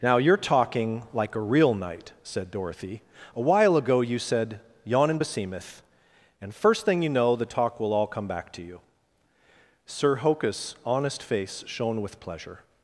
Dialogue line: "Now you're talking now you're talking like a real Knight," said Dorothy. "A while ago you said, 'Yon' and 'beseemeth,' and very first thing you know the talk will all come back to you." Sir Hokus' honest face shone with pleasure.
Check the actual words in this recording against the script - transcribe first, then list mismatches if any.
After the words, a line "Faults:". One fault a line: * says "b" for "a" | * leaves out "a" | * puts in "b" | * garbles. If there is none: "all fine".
"Now you're talking like a real Knight," said Dorothy. "A while ago you said, 'Yon' and 'beseemeth,' and first thing you know the talk will all come back to you." Sir Hokus' honest face shone with pleasure.
Faults:
* leaves out "now you're talking"
* leaves out "very"